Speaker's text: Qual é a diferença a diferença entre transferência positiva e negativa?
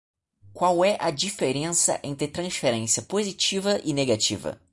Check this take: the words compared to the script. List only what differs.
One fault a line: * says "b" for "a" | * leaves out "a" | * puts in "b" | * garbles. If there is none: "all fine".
* leaves out "a diferença"